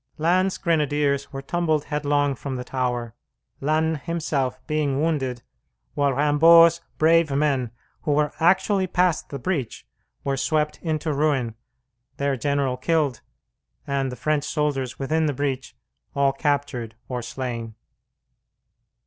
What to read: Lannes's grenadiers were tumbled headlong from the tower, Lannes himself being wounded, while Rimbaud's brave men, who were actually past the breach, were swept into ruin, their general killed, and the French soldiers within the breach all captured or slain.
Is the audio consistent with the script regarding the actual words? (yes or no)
yes